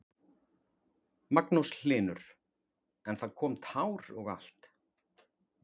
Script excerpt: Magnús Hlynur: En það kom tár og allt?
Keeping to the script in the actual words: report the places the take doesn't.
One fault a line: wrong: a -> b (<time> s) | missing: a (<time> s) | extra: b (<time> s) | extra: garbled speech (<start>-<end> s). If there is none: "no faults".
no faults